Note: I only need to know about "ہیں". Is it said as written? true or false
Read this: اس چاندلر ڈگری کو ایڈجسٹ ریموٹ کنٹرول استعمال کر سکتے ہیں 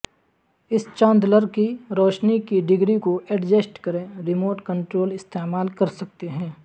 true